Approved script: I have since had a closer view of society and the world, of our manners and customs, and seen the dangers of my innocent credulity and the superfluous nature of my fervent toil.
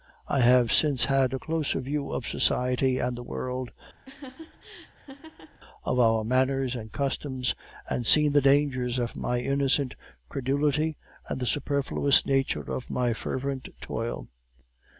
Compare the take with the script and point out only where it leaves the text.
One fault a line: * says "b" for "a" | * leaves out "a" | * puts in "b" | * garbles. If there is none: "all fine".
all fine